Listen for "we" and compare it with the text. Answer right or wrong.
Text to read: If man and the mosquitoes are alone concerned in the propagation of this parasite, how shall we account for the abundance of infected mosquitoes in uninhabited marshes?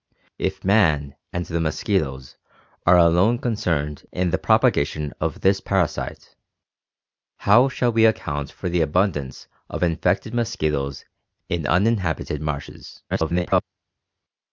right